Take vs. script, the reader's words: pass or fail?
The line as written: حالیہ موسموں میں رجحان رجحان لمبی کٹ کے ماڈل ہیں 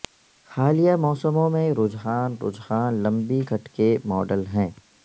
pass